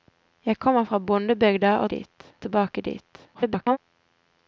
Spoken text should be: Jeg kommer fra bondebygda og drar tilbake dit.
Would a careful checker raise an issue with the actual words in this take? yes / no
yes